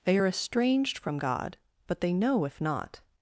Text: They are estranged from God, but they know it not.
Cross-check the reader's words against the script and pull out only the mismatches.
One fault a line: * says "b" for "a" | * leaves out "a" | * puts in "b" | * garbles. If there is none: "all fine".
* says "if" for "it"